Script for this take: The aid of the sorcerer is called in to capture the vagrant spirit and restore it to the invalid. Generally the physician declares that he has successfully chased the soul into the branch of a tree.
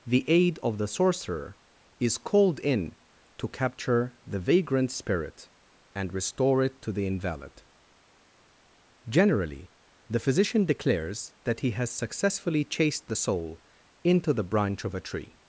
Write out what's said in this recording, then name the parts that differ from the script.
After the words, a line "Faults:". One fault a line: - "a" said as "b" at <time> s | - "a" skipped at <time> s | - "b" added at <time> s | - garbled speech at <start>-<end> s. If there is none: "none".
The aid of the sorcerer is called in to capture the vagrant spirit and restore it to the invalid. Generally the physician declares that he has successfully chased the soul into the branch of a tree.
Faults:
none